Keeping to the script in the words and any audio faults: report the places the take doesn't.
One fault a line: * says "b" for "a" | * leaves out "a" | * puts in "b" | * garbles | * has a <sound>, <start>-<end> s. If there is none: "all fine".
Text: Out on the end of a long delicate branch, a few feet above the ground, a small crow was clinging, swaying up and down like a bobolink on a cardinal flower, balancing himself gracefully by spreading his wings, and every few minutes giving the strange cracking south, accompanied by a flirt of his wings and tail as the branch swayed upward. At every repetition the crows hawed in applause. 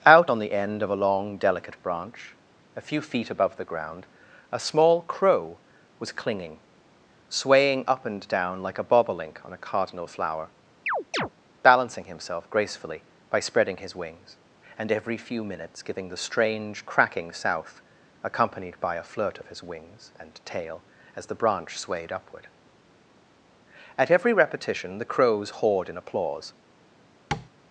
* has a chirp, 10.9-11.3 s
* has a tap, 27.3-27.5 s